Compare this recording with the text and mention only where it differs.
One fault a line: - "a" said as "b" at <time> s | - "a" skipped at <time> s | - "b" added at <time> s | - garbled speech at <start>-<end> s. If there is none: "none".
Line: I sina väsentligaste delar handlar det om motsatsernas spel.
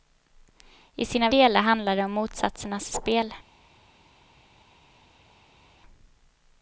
- "väsentligaste" skipped at 1.3 s